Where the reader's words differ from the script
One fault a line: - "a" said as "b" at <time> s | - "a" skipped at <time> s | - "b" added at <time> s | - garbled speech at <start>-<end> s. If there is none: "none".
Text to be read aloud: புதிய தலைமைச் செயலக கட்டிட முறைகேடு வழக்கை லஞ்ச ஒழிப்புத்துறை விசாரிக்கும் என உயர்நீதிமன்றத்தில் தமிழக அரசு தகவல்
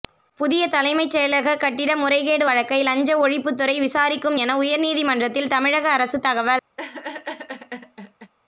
none